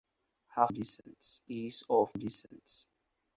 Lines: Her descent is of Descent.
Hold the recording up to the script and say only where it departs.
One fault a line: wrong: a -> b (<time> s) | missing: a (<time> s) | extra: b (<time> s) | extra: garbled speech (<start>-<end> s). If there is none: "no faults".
no faults